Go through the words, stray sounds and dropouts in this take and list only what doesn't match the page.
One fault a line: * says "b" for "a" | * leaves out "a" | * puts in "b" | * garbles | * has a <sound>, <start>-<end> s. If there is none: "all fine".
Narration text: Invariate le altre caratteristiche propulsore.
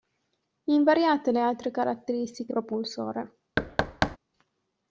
* has a thud, 3.6-4.2 s